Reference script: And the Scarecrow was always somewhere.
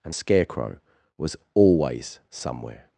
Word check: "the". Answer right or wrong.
wrong